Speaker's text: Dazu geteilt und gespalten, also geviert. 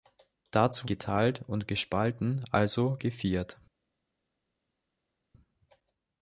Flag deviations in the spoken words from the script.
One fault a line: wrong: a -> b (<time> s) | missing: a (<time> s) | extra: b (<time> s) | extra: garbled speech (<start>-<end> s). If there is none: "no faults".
no faults